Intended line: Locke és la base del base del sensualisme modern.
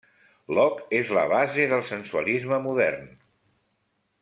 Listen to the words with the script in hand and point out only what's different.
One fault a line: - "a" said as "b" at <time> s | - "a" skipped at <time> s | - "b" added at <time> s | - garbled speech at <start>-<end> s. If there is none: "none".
- "base del" skipped at 1.8 s